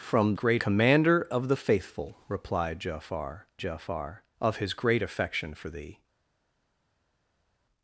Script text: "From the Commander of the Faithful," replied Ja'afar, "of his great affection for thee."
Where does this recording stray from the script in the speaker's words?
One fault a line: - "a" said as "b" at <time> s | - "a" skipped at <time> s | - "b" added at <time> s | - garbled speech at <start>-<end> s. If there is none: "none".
- "the" said as "great" at 0.3 s
- "Ja'afar" added at 3.6 s